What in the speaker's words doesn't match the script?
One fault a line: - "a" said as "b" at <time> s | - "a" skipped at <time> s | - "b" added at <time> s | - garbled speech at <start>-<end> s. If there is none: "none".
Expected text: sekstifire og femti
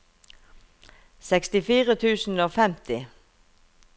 - "tusen" added at 2.0 s